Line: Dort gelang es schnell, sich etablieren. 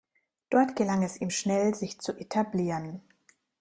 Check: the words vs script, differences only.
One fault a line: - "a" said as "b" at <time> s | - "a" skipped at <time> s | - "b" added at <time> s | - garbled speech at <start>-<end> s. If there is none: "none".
- "ihm" added at 1.2 s
- "zu" added at 2.0 s